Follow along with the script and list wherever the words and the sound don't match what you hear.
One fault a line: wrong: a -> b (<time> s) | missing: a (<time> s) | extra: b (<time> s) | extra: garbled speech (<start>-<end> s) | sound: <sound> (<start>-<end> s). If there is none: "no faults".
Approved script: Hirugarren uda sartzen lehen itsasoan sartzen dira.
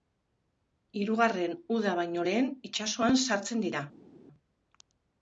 wrong: sartzen -> baino (2.0 s)